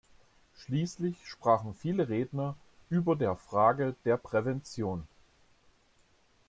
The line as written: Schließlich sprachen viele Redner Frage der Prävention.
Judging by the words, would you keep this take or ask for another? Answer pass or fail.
fail